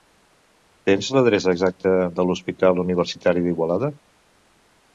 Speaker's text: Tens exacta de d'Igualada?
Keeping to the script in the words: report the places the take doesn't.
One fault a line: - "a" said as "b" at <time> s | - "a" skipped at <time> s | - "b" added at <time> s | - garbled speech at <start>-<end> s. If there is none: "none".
- "l'adreça" added at 1.1 s
- "l'Hospital Universitari" added at 2.3 s